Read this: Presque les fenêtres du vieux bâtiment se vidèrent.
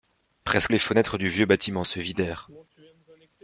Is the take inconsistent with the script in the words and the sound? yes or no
no